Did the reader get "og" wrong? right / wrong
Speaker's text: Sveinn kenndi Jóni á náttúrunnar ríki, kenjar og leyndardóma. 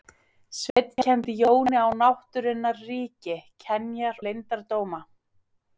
wrong